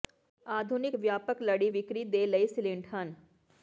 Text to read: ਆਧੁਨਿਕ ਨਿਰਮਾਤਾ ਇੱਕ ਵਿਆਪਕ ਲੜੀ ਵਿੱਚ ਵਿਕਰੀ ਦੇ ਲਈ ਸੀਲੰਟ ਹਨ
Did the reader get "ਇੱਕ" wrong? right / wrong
wrong